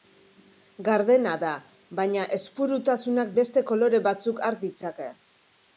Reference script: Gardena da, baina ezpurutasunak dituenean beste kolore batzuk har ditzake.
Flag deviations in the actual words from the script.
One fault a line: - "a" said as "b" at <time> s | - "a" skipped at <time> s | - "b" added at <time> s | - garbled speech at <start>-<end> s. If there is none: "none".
- "dituenean" skipped at 3.4 s